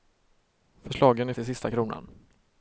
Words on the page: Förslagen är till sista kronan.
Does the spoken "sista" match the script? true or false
true